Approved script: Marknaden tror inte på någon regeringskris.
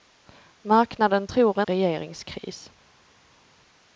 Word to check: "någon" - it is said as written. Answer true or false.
false